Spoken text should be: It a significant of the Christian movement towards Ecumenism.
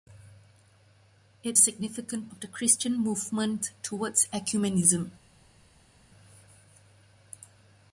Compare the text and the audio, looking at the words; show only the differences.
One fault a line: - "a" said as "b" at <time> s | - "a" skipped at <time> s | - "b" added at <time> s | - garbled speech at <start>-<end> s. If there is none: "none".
none